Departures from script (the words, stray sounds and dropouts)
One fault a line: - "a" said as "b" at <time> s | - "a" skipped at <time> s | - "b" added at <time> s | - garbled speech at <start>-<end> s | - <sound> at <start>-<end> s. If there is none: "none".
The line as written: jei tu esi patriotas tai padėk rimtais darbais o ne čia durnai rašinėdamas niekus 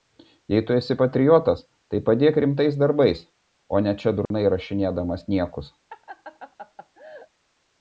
- dropout at 4.3-4.3 s
- laugh at 5.9-7.3 s